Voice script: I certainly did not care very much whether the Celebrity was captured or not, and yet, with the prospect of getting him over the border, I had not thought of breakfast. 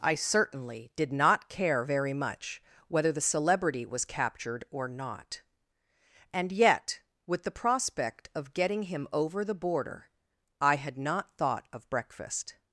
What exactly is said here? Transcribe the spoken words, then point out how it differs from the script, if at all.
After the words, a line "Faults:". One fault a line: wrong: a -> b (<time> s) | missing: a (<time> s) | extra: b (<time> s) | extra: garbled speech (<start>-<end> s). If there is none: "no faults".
I certainly did not care very much whether the Celebrity was captured or not, and yet, with the prospect of getting him over the border, I had not thought of breakfast.
Faults:
no faults